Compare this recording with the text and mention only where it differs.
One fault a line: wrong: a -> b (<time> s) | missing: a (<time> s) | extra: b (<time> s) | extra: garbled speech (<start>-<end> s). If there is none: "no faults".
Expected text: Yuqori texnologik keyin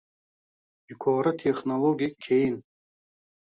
no faults